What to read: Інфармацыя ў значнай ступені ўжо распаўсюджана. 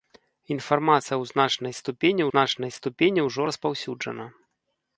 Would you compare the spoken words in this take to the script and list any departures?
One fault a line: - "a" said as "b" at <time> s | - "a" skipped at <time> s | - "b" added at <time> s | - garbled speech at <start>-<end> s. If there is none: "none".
- "значнай ступені" added at 2.3 s